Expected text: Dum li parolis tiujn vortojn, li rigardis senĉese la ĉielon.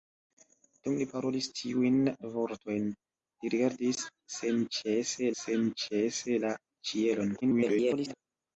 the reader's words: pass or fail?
fail